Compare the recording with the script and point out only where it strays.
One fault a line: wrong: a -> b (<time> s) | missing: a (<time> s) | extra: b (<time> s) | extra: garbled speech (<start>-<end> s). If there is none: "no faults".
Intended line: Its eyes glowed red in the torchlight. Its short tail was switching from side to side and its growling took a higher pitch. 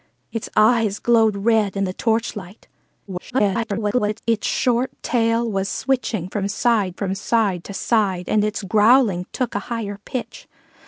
extra: garbled speech (3.1-4.2 s)
extra: from side (6.9 s)